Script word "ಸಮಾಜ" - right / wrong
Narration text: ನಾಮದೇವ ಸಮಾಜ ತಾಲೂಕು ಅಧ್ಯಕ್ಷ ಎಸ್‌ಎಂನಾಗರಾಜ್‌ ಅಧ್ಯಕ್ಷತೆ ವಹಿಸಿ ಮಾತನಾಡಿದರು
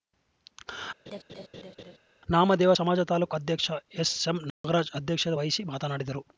right